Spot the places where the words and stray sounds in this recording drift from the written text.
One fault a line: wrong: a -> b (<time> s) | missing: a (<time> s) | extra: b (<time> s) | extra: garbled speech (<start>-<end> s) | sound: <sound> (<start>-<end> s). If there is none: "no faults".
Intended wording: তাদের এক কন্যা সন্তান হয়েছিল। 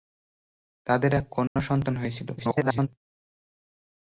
sound: dropout (1.5-1.6 s)
extra: garbled speech (2.4-2.9 s)